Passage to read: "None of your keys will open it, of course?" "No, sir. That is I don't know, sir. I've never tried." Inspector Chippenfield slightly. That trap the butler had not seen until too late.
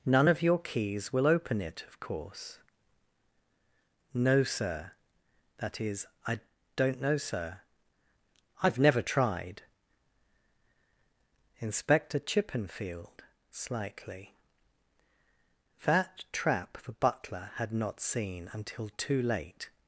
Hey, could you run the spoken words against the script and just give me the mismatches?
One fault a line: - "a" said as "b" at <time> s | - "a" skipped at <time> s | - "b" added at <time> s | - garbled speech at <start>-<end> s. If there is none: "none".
none